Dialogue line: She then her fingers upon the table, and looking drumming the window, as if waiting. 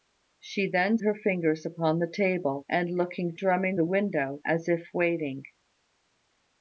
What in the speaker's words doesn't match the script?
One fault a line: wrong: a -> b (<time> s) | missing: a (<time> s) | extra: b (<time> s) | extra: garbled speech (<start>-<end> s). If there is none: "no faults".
no faults